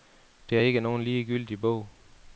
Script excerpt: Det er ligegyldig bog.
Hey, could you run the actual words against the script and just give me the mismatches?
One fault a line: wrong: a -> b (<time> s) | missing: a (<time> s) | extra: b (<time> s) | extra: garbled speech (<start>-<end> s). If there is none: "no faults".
extra: ikke nogen (0.6 s)